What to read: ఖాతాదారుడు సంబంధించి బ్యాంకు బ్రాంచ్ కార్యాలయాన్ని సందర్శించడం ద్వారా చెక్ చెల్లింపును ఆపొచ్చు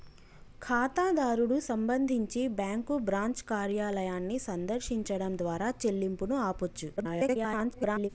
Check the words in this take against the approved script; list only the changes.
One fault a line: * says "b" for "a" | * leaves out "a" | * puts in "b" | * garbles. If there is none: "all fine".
* leaves out "చెక్"
* garbles